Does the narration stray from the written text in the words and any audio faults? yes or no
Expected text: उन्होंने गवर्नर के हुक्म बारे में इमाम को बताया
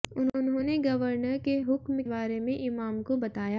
no